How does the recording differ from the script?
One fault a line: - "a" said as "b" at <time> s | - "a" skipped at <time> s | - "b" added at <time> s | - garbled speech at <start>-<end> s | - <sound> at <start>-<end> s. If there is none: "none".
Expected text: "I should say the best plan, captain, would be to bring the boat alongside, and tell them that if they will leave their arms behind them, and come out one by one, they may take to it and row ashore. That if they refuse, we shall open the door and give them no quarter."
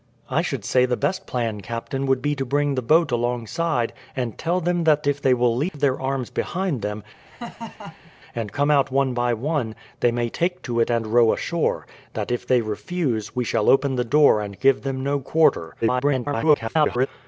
- dropout at 5.7-5.7 s
- laugh at 7.3-8.1 s
- garbled speech at 15.8-17.1 s